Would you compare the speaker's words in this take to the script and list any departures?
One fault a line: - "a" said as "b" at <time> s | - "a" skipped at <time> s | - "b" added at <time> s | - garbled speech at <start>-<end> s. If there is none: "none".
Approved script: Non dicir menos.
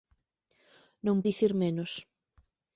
none